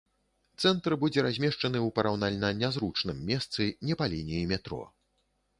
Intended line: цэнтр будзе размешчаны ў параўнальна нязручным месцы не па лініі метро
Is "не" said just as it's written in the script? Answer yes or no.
yes